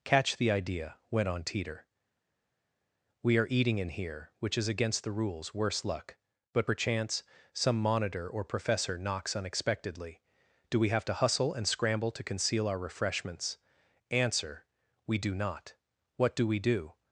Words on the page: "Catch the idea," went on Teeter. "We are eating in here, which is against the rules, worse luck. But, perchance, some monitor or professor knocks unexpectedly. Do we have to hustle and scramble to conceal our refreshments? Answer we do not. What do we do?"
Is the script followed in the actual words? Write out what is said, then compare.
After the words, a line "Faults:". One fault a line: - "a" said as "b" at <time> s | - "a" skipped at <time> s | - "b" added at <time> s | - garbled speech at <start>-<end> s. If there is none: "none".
"Catch the idea," went on Teeter. "We are eating in here, which is against the rules, worse luck. But, perchance, some monitor or professor knocks unexpectedly. Do we have to hustle and scramble to conceal our refreshments? Answer we do not. What do we do?"
Faults:
none